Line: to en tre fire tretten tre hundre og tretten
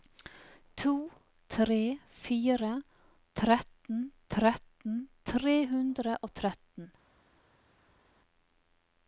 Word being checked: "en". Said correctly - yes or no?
no